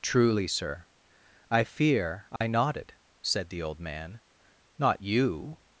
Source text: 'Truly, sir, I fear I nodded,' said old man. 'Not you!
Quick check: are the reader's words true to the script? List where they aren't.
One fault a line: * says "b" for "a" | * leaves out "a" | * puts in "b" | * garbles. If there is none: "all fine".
* puts in "the"